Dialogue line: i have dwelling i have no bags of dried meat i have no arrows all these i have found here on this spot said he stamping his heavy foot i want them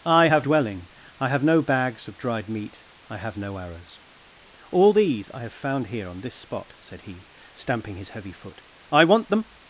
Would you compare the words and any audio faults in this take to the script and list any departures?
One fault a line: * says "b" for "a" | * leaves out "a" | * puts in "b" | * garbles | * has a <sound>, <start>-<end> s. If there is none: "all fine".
all fine